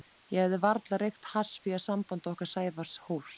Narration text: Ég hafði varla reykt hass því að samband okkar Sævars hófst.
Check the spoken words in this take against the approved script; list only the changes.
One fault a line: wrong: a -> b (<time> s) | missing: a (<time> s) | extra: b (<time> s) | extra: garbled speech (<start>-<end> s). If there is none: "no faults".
no faults